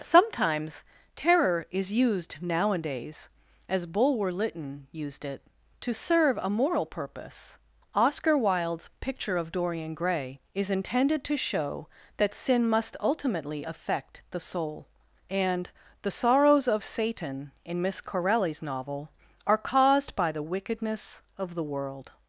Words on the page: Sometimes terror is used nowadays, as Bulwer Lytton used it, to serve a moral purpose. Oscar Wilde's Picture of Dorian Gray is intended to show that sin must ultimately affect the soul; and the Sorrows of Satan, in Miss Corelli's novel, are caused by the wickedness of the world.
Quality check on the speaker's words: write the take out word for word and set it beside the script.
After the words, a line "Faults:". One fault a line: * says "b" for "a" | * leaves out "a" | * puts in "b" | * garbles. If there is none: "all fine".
Sometimes terror is used nowadays, as Bulwer Lytton used it, to serve a moral purpose. Oscar Wilde's Picture of Dorian Gray is intended to show that sin must ultimately affect the soul; and the Sorrows of Satan, in Miss Corelli's novel, are caused by the wickedness of the world.
Faults:
all fine